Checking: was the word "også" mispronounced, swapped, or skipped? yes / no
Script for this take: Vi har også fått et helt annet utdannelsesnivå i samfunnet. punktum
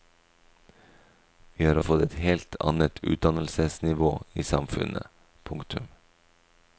yes